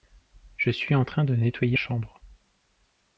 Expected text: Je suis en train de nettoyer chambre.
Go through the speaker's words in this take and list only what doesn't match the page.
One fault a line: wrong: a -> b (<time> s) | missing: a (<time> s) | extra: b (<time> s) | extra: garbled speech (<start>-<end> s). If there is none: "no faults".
no faults